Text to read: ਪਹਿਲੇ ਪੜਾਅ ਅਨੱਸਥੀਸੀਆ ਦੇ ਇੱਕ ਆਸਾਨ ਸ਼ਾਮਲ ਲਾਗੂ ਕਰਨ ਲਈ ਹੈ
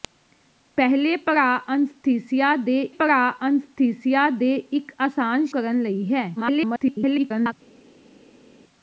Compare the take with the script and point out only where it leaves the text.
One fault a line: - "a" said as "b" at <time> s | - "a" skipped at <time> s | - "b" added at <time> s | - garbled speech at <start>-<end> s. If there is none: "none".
- "ਪੜਾਅ ਅਨੱਸਥੀਸੀਆ ਦੇ" added at 2.9 s
- "ਸ਼ਾਮਲ ਲਾਗੂ" skipped at 5.4 s
- garbled speech at 6.4-7.5 s